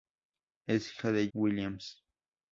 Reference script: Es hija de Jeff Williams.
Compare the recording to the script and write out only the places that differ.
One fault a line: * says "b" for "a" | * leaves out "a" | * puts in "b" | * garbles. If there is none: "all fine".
* leaves out "Jeff"